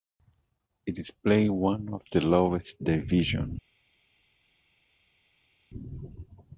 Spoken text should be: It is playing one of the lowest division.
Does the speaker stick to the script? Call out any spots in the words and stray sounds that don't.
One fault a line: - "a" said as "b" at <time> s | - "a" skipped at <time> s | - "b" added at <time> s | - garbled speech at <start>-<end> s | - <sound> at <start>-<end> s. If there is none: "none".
none